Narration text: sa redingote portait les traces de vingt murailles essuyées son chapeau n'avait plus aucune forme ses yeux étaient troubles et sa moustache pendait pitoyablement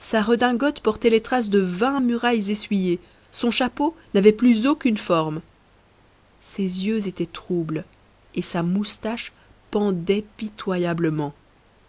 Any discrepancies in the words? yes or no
no